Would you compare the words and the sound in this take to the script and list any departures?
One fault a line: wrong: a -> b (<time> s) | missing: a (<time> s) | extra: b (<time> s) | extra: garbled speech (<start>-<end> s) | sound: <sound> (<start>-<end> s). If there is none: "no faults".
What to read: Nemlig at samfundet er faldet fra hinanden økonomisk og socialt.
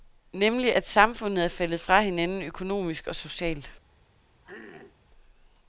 sound: throat clearing (4.4-5.0 s)